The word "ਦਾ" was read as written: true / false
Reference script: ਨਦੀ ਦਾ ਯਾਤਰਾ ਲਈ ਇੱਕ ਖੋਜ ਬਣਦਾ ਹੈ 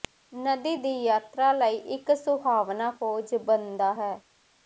false